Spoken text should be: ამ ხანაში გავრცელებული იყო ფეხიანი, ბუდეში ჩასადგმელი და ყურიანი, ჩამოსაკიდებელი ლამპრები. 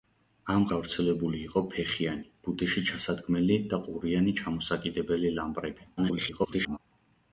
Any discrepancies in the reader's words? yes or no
yes